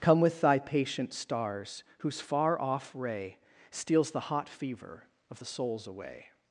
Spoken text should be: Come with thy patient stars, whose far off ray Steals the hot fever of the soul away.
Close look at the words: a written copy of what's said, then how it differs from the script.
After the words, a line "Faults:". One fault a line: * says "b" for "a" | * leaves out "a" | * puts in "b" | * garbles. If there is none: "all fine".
Come with thy patient stars, whose far off ray Steals the hot fever of the souls away.
Faults:
* says "souls" for "soul"